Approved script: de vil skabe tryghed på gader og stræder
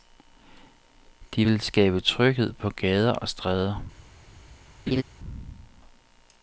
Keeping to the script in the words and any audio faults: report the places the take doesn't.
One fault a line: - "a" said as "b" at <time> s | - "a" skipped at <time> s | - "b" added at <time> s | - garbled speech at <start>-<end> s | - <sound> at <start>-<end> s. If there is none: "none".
- laugh at 4.9-5.0 s